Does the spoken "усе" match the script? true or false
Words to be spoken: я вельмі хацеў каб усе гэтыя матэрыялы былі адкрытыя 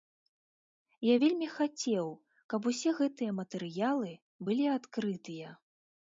true